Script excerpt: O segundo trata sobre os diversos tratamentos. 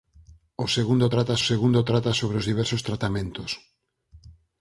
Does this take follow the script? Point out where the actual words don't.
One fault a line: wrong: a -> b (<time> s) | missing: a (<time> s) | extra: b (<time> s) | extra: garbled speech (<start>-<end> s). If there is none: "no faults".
extra: segundo trata (1.5 s)